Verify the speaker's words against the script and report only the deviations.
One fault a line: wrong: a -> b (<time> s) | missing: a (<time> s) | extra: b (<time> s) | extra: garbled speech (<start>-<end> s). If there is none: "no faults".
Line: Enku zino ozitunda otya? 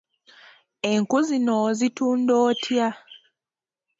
no faults